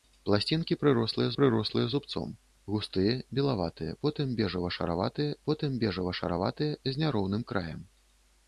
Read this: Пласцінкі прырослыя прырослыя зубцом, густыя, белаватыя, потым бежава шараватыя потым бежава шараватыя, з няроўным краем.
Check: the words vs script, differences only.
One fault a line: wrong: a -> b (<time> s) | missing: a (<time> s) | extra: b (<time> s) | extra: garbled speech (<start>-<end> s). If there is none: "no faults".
no faults